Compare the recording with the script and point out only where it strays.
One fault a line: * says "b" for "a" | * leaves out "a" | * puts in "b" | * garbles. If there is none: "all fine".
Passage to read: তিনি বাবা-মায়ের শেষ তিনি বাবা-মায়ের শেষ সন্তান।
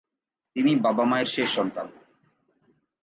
* leaves out "তিনি বাবা-মায়ের শেষ"